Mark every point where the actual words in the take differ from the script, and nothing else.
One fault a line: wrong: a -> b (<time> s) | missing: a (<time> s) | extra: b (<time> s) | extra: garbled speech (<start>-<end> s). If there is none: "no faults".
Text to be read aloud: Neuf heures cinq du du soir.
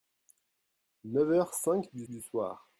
no faults